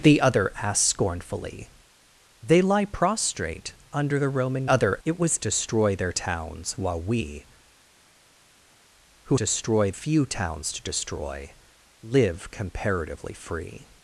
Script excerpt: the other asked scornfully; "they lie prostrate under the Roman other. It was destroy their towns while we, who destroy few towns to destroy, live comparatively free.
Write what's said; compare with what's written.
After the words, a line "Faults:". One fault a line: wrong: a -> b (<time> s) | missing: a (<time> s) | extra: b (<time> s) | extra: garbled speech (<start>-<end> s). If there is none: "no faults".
the other asked scornfully; "they lie prostrate under the Roman other. It was destroy their towns while we, who destroy few towns to destroy, live comparatively free.
Faults:
no faults